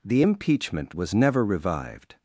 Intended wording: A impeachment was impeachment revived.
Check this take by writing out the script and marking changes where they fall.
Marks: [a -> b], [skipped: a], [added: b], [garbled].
[A -> The] impeachment was [impeachment -> never] revived.